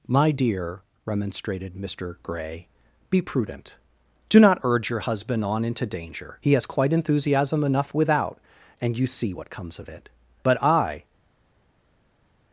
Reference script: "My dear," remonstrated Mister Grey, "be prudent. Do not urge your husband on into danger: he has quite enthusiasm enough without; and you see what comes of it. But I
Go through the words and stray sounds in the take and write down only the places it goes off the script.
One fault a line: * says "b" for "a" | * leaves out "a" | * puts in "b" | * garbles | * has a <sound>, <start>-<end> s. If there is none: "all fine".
all fine